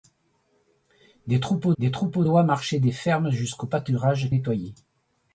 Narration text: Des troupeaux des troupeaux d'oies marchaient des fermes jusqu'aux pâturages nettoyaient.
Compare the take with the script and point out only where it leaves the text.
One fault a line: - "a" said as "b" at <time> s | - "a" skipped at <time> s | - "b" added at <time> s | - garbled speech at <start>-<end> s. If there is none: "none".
none